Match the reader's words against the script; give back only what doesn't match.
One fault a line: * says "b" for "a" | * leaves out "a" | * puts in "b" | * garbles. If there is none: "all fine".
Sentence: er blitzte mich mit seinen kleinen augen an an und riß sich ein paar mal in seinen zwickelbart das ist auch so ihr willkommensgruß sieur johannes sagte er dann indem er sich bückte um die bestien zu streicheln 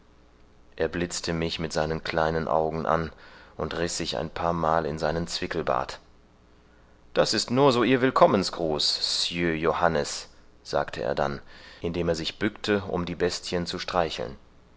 * leaves out "an"
* says "nur" for "auch"